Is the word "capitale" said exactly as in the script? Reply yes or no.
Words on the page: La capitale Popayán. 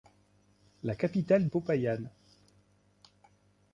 yes